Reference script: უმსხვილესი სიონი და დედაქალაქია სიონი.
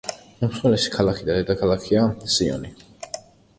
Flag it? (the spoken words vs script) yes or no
yes